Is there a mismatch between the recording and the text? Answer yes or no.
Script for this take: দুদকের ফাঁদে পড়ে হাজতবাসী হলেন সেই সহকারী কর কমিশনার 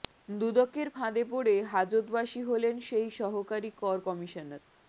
no